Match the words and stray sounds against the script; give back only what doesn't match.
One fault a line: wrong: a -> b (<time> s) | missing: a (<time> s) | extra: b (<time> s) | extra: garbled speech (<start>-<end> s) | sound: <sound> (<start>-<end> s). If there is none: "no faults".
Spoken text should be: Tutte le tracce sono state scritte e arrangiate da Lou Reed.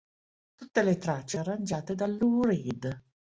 missing: sono state scritte (1.4 s)